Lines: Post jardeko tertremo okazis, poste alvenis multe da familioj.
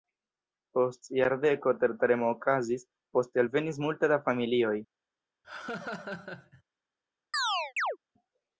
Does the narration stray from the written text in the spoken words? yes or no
no